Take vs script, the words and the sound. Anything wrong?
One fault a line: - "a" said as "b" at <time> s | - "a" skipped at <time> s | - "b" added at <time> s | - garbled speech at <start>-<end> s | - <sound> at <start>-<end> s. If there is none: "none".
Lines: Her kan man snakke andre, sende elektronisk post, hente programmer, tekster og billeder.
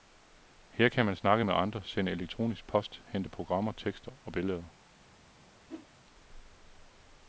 - "med" added at 1.4 s
- whoosh at 5.7-5.9 s